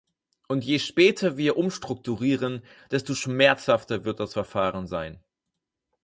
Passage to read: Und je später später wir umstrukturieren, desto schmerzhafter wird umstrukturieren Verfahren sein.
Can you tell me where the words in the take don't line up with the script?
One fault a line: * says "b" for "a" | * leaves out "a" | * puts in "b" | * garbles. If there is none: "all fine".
* leaves out "später"
* says "das" for "umstrukturieren"